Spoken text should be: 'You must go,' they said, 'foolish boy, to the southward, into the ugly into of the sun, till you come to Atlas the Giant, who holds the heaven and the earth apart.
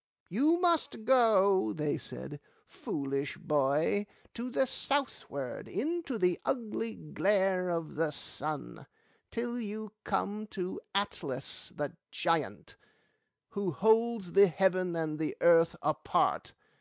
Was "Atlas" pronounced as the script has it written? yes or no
yes